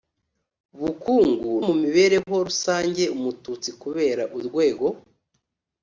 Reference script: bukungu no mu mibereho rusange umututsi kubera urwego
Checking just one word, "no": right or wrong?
wrong